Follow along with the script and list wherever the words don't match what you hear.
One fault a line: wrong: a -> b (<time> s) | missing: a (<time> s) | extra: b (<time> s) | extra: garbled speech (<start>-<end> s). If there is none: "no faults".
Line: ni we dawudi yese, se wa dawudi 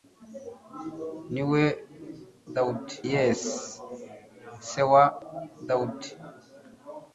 no faults